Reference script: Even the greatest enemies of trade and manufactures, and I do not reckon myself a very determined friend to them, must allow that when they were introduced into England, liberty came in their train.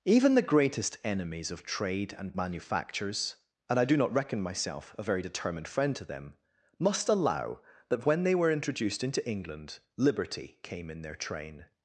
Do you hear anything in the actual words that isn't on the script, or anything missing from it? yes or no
no